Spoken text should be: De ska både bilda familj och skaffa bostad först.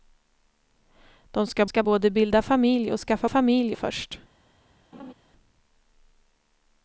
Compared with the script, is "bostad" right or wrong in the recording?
wrong